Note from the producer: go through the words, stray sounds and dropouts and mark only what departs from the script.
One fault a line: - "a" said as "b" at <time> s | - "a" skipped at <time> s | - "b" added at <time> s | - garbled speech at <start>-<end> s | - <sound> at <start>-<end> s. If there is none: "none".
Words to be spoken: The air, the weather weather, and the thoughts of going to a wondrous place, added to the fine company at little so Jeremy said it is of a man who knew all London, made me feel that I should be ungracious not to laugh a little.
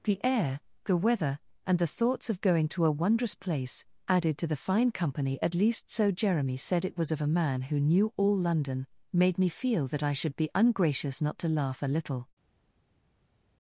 - "weather" skipped at 1.4 s
- "little" said as "least" at 5.5 s
- "is" said as "was" at 7.0 s